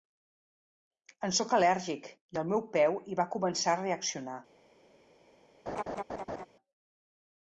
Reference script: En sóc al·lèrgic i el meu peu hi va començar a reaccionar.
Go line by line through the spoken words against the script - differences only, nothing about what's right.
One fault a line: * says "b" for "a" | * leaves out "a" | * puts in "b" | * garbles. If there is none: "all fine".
all fine